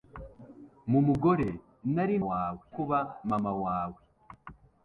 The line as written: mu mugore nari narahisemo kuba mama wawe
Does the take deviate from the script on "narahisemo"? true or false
true